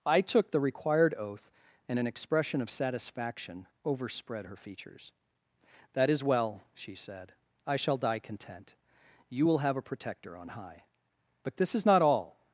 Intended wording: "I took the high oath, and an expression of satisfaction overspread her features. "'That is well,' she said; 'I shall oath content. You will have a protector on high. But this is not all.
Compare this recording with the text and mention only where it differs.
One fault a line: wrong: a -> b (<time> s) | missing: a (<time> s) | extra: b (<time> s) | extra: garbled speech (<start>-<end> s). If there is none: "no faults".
wrong: high -> required (0.6 s)
wrong: oath -> die (8.0 s)